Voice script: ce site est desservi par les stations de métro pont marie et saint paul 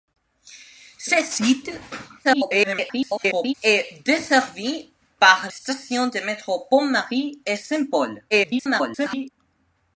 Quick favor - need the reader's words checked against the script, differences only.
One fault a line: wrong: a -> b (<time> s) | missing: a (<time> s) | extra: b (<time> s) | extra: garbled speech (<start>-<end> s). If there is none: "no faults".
extra: garbled speech (2.2-3.5 s)
missing: les (5.5 s)
extra: garbled speech (8.3-9.3 s)